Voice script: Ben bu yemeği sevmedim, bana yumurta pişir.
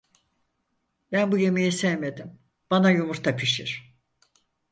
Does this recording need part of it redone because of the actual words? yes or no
no